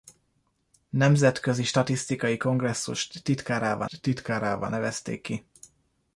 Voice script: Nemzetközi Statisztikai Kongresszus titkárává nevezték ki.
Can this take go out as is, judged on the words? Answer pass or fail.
fail